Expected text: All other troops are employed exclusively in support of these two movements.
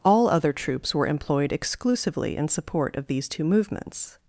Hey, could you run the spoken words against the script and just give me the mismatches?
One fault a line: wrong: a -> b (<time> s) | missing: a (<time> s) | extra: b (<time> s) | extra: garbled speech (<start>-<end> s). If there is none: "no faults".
wrong: are -> were (0.9 s)